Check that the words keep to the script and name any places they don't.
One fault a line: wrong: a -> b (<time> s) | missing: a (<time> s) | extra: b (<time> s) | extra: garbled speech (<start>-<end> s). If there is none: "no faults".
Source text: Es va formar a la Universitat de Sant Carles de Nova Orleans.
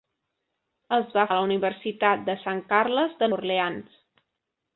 missing: formar (1.2 s)
missing: Nova (3.3 s)